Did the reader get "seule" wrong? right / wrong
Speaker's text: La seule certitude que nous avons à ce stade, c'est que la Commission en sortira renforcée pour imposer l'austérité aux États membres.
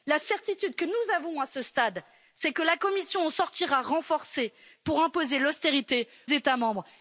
wrong